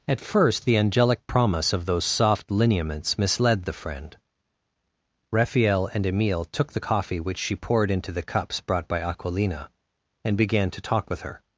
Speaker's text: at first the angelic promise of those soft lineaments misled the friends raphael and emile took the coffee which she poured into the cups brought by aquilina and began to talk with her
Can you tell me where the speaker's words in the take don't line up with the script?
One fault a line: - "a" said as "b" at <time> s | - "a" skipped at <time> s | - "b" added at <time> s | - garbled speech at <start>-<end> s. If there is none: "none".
- "friends" said as "friend" at 3.7 s